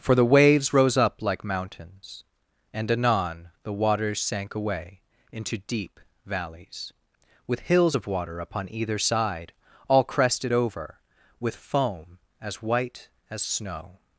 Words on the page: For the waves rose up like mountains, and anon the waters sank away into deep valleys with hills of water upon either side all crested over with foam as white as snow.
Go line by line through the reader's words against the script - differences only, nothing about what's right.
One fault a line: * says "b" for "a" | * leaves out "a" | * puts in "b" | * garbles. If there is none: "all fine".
all fine